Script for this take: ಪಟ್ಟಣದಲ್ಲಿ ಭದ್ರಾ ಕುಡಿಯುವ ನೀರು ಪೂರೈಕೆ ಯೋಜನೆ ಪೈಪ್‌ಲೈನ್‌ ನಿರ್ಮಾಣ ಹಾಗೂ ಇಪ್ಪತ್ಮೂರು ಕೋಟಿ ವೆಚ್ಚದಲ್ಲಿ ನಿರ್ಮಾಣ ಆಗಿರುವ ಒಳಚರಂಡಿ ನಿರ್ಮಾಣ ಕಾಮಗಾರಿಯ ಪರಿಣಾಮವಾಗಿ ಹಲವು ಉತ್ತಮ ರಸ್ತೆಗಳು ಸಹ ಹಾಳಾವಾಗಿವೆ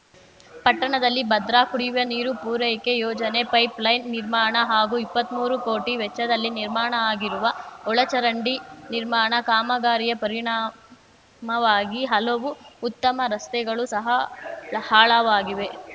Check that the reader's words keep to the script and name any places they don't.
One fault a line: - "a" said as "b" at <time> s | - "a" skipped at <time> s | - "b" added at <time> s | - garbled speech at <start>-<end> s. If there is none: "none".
none